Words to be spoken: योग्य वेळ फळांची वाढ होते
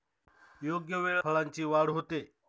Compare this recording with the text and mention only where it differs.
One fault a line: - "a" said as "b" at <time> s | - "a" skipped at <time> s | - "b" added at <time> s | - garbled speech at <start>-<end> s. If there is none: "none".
none